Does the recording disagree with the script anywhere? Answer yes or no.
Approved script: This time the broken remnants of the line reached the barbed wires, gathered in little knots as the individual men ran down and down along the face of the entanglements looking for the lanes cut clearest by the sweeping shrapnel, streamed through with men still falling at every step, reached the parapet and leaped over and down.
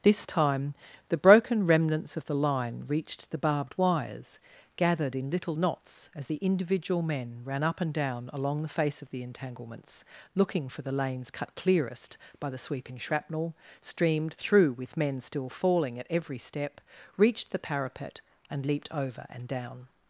yes